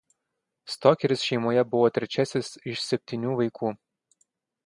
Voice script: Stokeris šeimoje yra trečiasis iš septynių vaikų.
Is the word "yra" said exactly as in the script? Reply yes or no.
no